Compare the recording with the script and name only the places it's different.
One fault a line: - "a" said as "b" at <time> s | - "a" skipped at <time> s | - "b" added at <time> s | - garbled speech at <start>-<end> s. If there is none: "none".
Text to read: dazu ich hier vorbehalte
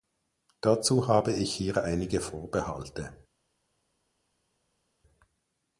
- "habe" added at 1.1 s
- "einige" added at 1.8 s